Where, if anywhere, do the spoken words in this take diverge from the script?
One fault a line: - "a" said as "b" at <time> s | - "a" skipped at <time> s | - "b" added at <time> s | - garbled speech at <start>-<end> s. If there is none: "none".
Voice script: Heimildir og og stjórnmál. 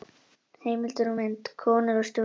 - "mynd Konur" added at 1.2 s